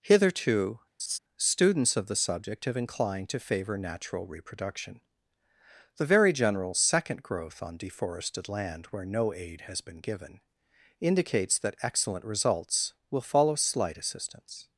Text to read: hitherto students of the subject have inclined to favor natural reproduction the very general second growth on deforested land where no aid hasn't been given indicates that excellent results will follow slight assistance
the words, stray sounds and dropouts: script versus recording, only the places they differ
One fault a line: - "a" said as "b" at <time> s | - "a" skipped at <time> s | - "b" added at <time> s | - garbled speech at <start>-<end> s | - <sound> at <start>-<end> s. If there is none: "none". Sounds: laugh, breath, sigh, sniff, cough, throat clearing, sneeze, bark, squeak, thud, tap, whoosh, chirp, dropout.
- laugh at 1.0-1.2 s
- "hasn't" said as "has" at 9.6 s